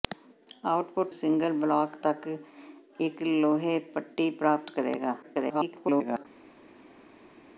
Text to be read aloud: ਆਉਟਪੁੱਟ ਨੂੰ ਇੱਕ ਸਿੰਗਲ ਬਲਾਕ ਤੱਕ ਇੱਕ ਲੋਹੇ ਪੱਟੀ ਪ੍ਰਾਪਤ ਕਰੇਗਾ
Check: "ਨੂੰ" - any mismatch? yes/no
yes